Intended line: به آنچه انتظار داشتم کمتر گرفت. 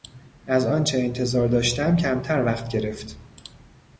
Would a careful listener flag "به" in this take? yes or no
yes